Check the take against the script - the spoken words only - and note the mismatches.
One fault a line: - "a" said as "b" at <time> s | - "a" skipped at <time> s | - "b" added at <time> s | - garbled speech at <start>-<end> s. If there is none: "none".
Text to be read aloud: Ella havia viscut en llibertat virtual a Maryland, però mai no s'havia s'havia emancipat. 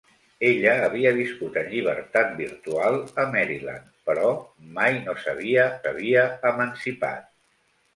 none